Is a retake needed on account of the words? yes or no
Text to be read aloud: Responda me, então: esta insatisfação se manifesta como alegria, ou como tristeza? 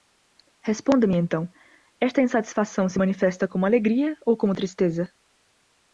no